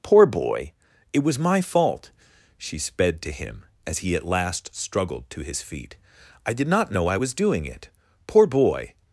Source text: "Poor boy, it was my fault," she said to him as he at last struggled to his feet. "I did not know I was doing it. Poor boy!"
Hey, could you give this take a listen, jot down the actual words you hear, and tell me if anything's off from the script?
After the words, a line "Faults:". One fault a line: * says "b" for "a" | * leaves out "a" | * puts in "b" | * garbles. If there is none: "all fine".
"Poor boy, it was my fault," she sped to him as he at last struggled to his feet. "I did not know I was doing it. Poor boy!"
Faults:
* says "sped" for "said"